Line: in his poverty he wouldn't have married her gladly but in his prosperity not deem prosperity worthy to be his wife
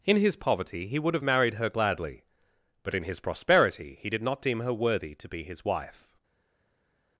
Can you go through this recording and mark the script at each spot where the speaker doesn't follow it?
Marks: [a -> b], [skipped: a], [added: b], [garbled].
in his poverty he [wouldn't -> would] have married her gladly but in his prosperity [added: he did] not deem [prosperity -> her] worthy to be his wife